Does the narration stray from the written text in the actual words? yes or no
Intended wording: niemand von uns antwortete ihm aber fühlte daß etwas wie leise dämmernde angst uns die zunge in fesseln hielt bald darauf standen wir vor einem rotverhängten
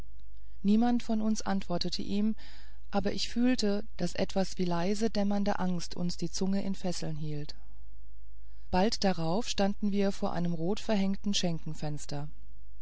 yes